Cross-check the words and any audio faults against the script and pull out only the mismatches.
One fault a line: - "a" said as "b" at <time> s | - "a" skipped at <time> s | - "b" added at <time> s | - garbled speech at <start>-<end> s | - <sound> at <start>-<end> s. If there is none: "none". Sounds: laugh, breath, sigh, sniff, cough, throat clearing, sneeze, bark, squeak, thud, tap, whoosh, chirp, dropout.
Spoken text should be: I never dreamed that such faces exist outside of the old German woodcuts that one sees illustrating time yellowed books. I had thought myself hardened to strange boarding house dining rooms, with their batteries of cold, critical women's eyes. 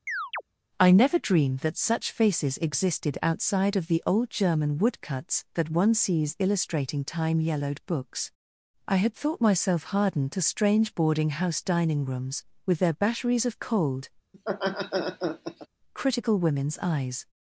- chirp at 0.1-0.4 s
- "exist" said as "existed" at 2.6 s
- laugh at 14.3-15.7 s